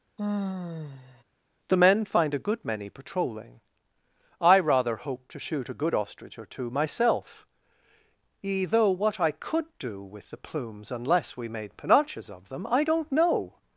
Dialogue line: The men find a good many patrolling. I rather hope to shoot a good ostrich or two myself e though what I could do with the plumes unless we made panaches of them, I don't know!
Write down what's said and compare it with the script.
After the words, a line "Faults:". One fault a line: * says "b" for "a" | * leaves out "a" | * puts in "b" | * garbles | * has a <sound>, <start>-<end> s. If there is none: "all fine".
The men find a good many patrolling. I rather hope to shoot a good ostrich or two myself e though what I could do with the plumes unless we made panaches of them, I don't know!
Faults:
* has a sigh, 0.2-1.2 s